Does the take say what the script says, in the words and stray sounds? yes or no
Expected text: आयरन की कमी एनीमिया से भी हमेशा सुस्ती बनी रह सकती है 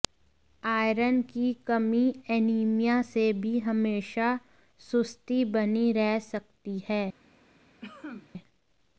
no